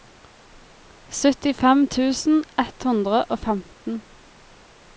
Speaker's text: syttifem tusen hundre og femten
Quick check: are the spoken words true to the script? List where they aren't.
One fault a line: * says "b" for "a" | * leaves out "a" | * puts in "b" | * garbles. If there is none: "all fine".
* puts in "ett"